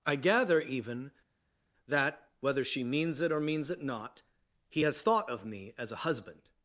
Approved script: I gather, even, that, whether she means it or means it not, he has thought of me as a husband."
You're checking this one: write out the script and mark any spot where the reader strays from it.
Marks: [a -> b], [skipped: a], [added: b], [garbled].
I gather, even, that, whether she means it or means it not, he has thought of me as a husband."